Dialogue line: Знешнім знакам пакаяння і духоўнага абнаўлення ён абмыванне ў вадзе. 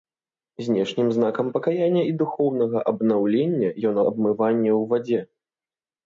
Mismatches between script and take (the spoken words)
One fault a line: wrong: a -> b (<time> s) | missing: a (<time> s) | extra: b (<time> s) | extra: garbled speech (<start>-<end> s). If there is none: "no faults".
no faults